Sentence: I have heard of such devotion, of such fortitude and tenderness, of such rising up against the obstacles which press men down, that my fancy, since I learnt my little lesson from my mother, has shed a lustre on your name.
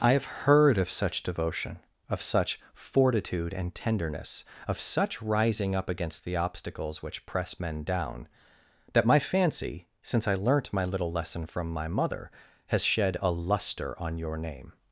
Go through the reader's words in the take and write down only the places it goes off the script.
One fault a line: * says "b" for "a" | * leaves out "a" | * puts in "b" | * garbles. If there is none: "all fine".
all fine